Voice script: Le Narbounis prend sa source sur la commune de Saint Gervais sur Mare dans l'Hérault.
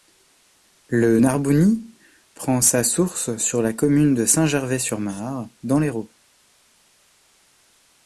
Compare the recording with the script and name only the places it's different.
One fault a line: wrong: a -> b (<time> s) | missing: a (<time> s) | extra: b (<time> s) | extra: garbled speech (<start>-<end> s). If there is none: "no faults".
no faults